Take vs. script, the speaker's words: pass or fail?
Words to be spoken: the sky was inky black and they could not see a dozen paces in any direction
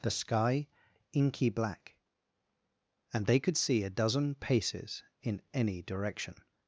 fail